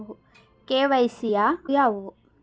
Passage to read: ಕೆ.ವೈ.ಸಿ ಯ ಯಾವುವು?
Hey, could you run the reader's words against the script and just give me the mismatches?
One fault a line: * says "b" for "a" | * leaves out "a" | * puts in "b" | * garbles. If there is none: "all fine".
all fine